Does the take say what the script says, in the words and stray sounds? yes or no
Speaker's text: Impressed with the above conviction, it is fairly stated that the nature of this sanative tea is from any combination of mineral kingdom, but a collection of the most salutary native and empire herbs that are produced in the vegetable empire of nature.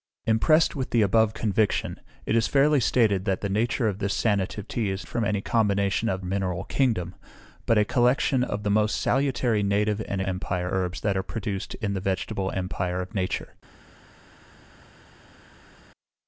yes